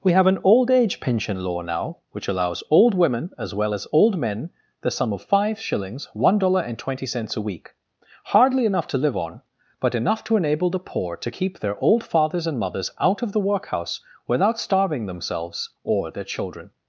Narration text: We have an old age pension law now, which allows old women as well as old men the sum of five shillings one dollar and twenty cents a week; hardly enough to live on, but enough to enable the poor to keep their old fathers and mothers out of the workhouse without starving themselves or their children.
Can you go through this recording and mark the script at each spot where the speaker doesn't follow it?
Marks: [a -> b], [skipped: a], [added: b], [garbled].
We have an old age pension law now, which allows old women as well as old men the sum of five shillings one dollar and twenty cents a week; hardly enough to live on, but enough to enable the poor to keep their old fathers and mothers out of the workhouse without starving themselves or their children.